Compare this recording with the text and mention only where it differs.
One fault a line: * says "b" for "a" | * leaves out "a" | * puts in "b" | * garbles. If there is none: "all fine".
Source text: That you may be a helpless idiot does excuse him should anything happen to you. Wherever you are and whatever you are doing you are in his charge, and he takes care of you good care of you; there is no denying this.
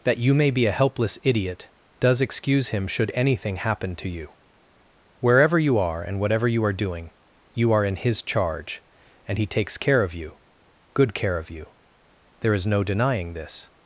all fine